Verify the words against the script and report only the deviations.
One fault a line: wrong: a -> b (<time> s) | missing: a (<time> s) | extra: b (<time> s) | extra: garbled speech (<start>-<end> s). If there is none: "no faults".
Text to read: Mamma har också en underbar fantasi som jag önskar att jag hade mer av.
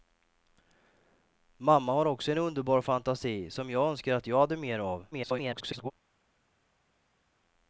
extra: garbled speech (5.1-5.9 s)